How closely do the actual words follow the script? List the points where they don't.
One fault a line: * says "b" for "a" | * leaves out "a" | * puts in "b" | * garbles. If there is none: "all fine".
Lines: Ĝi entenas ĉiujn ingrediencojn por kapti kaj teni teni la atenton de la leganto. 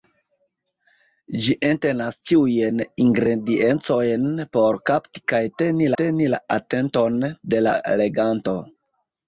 all fine